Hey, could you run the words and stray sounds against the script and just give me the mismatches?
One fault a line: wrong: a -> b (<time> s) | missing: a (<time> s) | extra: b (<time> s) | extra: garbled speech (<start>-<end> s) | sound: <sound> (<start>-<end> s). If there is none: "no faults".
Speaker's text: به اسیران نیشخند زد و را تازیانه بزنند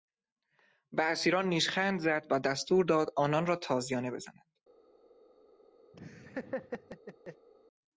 extra: دستور داد آنان (2.4 s)
sound: laugh (5.9-7.5 s)